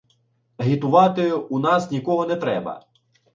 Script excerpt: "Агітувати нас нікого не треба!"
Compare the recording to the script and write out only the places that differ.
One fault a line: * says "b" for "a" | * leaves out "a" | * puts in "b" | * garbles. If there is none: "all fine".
* puts in "у"